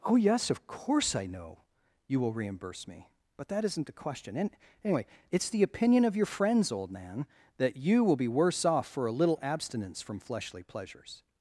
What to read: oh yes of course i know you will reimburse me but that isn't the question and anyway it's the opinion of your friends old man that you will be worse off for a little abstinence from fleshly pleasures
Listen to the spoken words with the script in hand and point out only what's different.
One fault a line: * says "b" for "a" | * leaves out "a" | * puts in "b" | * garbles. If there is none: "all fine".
all fine